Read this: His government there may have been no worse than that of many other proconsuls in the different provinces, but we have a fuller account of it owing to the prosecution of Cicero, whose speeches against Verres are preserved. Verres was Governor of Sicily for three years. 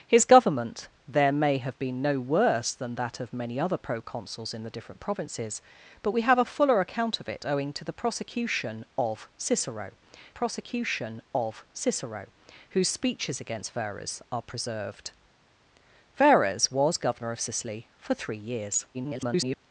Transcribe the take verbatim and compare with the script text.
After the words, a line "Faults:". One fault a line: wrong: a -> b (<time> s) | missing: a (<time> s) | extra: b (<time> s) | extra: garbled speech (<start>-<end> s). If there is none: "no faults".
His government there may have been no worse than that of many other proconsuls in the different provinces, but we have a fuller account of it owing to the prosecution of Cicero prosecution of Cicero, whose speeches against Verres are preserved. Verres was Governor of Sicily for three years. [garbled]
Faults:
extra: prosecution of Cicero (10.3 s)
extra: garbled speech (18.9-19.6 s)